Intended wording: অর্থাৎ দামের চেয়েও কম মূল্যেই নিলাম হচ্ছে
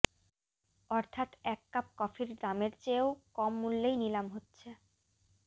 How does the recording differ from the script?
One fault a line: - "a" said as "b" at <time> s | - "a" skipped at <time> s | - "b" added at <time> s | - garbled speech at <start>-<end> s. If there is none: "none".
- "এক কাপ কফির" added at 1.4 s